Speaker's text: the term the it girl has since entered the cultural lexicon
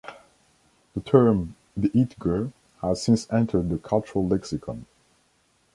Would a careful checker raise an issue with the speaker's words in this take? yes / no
no